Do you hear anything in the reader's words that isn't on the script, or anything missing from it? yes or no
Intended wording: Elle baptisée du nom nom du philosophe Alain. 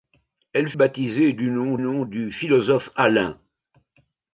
no